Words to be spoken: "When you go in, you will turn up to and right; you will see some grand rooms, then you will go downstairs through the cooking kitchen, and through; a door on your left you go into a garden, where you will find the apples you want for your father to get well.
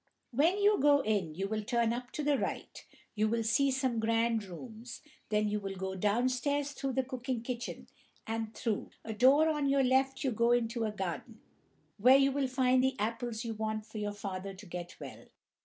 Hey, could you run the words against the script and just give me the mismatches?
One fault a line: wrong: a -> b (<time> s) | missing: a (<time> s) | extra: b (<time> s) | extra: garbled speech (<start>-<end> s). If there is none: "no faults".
wrong: and -> the (2.2 s)